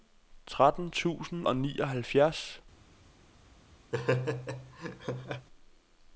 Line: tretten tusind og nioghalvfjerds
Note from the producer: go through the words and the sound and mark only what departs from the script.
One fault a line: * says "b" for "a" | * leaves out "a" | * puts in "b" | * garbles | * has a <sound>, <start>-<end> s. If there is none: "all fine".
* has a laugh, 3.9-5.5 s